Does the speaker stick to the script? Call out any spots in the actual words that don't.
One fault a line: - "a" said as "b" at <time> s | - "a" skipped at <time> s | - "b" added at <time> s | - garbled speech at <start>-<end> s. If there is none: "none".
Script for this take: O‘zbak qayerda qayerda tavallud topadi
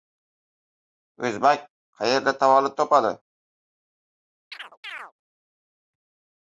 - "qayerda" skipped at 2.4 s